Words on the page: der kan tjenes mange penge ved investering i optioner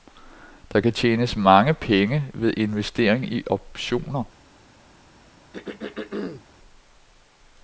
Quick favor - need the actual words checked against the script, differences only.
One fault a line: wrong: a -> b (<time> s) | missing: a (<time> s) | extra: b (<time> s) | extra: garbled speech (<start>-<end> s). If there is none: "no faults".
no faults